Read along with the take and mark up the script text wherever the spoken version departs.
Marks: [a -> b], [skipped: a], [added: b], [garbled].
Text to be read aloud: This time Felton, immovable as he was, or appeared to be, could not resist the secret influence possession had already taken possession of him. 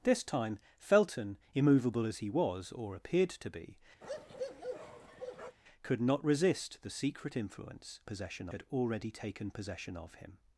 This time Felton, immovable as he was, or appeared to be, could not resist the secret influence possession had already taken possession of him.